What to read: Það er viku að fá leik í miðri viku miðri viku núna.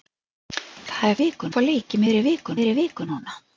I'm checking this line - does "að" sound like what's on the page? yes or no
yes